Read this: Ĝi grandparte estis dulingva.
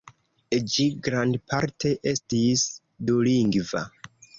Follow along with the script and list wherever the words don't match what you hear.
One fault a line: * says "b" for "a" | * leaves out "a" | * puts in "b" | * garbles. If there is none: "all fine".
all fine